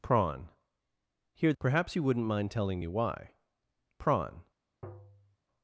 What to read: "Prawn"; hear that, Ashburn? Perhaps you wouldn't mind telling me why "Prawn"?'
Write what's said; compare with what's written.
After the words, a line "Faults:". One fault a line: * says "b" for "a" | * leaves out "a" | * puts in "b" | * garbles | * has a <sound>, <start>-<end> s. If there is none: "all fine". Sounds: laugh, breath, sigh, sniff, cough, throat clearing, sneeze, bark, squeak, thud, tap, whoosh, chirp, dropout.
"Prawn"; hear? Perhaps you wouldn't mind telling me why "Prawn"?'
Faults:
* leaves out "that Ashburn"
* has a tap, 4.8-5.4 s